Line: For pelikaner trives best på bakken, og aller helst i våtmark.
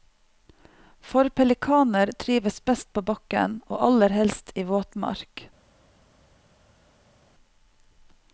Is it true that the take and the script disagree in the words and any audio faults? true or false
false